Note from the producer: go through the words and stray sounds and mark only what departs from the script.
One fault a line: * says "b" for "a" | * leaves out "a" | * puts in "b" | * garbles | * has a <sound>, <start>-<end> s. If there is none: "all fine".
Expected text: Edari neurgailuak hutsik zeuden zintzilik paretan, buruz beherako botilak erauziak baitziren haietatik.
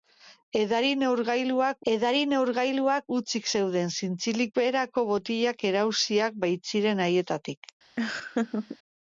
* puts in "edari neurgailuak"
* leaves out "paretan buruz"
* has a laugh, 8.0-8.8 s